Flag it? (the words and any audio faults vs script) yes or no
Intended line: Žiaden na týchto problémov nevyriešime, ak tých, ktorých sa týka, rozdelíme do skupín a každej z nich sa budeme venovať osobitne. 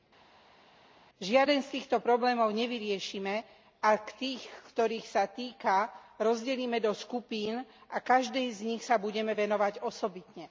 yes